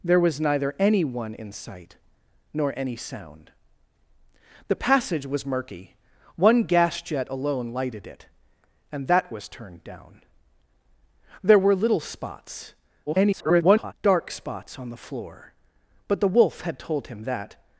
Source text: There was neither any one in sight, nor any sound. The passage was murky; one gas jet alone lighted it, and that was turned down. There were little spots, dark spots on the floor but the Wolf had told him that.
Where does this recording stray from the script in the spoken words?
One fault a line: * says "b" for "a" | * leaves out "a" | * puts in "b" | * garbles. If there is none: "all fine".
* garbles